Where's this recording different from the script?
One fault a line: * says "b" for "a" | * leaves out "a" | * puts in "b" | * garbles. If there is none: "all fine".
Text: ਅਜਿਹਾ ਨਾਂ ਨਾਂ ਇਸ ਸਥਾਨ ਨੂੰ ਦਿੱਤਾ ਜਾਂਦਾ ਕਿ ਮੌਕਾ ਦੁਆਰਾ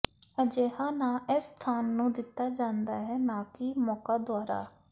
* leaves out "ਨਾਂ"
* puts in "ਹੈ ਨਾ"